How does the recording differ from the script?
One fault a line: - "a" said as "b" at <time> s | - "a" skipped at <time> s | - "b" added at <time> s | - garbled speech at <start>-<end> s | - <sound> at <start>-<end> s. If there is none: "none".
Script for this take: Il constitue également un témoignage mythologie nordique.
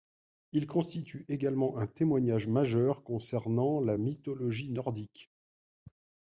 - "majeur concernant la" added at 2.5 s